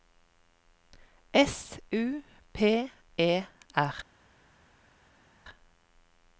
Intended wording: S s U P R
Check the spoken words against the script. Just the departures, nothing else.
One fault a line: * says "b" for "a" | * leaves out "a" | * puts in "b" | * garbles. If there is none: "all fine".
* leaves out "s"
* puts in "E"